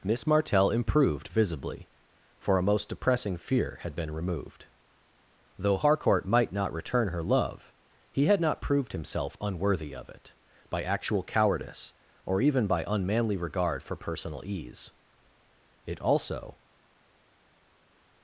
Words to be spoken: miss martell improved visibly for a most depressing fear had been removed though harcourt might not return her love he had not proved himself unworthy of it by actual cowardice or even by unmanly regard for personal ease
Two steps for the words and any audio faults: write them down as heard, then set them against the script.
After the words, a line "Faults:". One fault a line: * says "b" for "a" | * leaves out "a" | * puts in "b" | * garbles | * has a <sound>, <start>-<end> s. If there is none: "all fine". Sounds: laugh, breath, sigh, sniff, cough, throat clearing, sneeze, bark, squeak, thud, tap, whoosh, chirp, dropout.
miss martell improved visibly for a most depressing fear had been removed though harcourt might not return her love he had not proved himself unworthy of it by actual cowardice or even by unmanly regard for personal ease it also
Faults:
* puts in "it also"